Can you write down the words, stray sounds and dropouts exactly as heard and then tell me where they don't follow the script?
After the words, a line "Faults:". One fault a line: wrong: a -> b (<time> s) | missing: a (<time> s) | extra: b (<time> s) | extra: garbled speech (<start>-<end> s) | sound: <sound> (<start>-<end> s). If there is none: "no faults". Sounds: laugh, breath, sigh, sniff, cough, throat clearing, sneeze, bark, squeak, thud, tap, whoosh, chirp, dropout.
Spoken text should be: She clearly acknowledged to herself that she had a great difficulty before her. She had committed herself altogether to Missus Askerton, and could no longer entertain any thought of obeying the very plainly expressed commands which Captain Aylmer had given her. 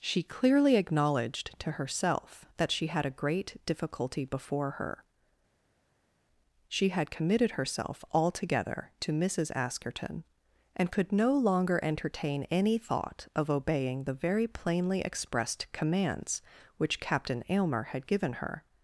She clearly acknowledged to herself that she had a great difficulty before her. She had committed herself altogether to Missus Askerton, and could no longer entertain any thought of obeying the very plainly expressed commands which Captain Aylmer had given her.
Faults:
no faults